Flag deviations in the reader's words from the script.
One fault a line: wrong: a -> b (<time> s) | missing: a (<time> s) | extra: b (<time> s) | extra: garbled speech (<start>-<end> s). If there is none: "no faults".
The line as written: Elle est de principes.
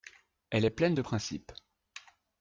extra: pleine (0.7 s)